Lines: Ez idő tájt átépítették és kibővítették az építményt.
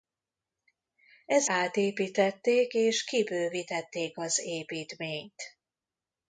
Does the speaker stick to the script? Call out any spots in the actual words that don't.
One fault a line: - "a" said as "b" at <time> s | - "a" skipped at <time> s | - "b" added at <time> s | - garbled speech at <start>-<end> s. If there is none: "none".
- "idő tájt" skipped at 1.5 s